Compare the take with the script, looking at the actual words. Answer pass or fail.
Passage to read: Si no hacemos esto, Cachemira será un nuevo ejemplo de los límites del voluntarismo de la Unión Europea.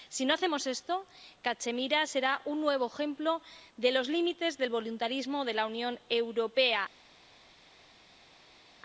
pass